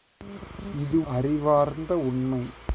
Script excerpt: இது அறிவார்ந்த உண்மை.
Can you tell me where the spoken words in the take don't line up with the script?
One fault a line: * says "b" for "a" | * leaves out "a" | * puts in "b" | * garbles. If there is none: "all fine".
all fine